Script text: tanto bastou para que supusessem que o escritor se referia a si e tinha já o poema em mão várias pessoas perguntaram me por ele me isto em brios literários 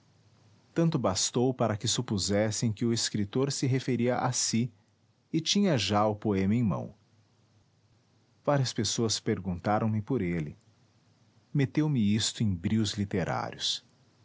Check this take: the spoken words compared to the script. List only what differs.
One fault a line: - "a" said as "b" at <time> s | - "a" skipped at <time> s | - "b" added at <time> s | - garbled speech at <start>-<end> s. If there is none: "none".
- "meteu" added at 11.5 s